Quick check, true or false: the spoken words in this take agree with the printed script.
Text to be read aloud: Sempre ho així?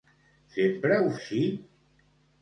true